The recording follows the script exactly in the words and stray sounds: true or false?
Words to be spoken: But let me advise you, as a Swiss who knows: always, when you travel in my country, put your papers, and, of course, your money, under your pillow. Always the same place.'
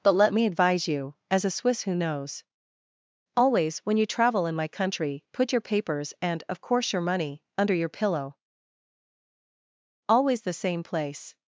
true